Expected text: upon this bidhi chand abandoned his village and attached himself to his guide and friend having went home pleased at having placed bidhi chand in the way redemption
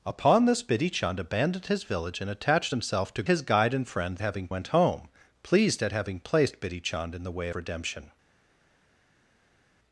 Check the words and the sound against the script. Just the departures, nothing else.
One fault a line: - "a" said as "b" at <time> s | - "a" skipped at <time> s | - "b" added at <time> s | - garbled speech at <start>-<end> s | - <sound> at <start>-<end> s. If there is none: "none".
none